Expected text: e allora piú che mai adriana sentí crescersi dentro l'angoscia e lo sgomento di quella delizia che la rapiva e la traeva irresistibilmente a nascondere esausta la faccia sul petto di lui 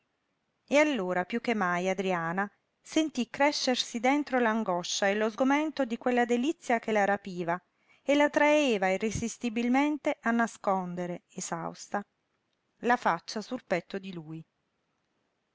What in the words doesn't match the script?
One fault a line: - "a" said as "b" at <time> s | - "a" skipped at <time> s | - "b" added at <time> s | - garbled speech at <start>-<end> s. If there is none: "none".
none